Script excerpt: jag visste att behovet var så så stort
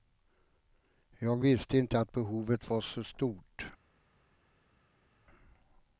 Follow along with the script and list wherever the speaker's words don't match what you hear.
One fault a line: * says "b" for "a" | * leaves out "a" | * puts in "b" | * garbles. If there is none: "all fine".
* puts in "inte"
* leaves out "så"